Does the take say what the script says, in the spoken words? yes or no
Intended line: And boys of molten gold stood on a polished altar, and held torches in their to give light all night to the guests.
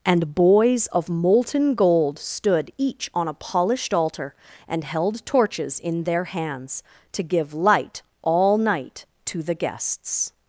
no